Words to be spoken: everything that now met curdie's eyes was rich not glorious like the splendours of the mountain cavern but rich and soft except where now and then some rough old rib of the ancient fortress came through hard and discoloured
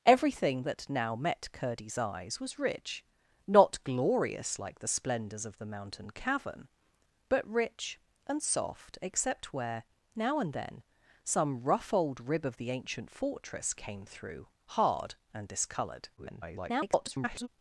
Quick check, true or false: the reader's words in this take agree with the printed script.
false